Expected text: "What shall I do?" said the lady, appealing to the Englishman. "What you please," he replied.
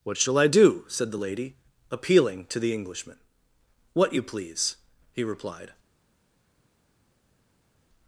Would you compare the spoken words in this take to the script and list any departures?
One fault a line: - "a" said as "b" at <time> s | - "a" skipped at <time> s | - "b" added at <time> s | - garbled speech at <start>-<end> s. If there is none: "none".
none